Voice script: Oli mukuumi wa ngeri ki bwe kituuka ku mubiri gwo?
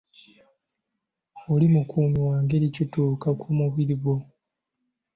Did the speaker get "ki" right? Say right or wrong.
wrong